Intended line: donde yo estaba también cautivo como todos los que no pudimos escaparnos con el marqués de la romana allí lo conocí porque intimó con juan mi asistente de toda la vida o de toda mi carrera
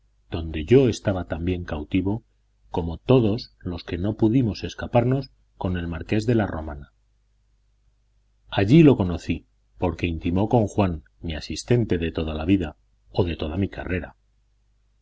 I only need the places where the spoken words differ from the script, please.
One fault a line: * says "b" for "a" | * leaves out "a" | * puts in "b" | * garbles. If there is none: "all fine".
all fine